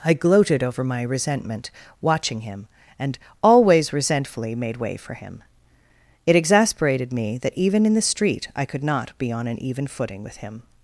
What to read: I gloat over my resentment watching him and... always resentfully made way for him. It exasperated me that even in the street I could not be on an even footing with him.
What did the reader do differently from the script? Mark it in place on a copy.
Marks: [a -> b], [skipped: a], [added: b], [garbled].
I [gloat -> gloated] over my resentment watching him and... always resentfully made way for him. It exasperated me that even in the street I could not be on an even footing with him.